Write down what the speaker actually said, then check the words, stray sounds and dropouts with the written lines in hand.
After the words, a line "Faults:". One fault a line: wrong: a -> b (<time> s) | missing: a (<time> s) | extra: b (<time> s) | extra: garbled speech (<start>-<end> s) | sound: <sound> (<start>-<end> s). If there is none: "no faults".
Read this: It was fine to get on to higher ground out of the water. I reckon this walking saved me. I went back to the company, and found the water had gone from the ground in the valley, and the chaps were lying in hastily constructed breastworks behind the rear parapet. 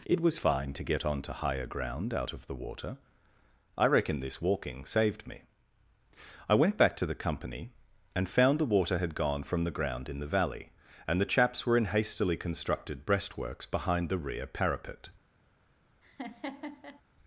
It was fine to get on to higher ground out of the water. I reckon this walking saved me. I went back to the company, and found the water had gone from the ground in the valley, and the chaps were in hastily constructed breastworks behind the rear parapet.
Faults:
missing: lying (11.8 s)
sound: laugh (16.0-17.0 s)